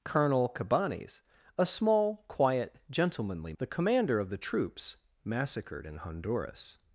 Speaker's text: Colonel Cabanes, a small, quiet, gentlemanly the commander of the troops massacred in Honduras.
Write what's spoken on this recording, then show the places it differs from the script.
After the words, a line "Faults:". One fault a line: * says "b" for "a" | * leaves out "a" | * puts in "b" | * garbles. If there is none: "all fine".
Colonel Cabanes, a small, quiet, gentlemanly the commander of the troops massacred in Honduras.
Faults:
all fine